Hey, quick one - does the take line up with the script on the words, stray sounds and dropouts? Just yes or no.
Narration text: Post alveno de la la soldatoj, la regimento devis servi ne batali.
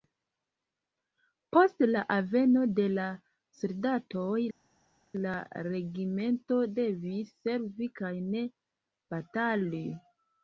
no